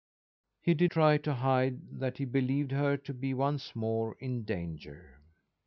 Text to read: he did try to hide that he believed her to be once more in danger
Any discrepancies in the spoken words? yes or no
no